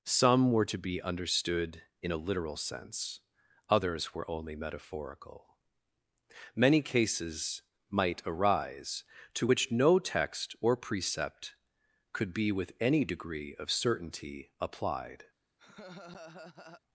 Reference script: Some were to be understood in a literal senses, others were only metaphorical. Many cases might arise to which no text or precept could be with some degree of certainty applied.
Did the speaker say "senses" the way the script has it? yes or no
no